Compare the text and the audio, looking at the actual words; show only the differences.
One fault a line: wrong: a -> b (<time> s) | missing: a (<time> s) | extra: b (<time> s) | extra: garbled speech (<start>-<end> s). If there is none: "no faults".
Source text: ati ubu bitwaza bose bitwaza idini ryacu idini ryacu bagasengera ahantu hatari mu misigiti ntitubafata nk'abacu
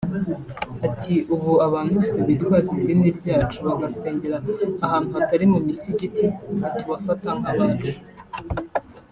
wrong: bitwaza -> abantu (1.7 s)
missing: idini ryacu (3.6 s)